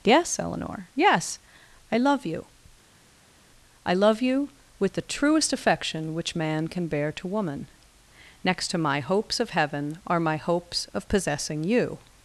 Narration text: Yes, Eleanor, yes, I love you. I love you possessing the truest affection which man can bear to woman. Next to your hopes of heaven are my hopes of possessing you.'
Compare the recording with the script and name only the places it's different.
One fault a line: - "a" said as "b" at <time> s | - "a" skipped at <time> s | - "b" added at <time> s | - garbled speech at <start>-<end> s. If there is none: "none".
- "possessing" said as "with" at 4.8 s
- "your" said as "my" at 8.8 s